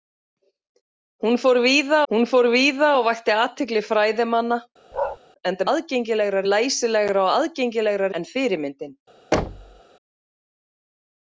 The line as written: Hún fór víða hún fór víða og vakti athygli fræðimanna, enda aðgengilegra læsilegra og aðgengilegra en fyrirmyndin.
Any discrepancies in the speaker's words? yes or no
no